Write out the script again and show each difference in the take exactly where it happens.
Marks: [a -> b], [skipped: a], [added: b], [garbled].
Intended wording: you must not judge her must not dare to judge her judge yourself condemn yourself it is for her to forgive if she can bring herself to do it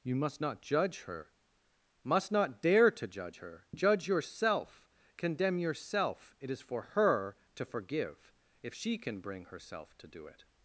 you must not judge her must not dare to judge her judge yourself condemn yourself it is for her to forgive if she can bring herself to do it